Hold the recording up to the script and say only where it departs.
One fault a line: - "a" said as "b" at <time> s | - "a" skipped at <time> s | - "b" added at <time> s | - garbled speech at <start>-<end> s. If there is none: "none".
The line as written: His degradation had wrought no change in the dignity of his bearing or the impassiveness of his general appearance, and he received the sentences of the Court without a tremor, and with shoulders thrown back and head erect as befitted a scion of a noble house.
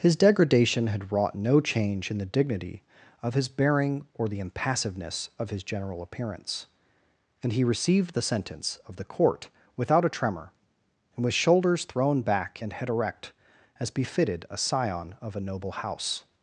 - "sentences" said as "sentence" at 8.2 s